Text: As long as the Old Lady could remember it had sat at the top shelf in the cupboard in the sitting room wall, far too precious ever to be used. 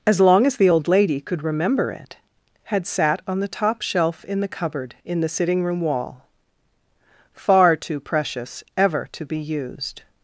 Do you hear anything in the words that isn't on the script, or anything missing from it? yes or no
yes